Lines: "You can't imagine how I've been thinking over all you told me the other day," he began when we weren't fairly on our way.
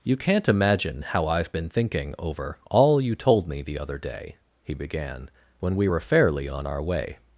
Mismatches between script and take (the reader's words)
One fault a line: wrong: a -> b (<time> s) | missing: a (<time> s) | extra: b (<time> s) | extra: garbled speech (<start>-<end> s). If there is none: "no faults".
wrong: weren't -> were (5.8 s)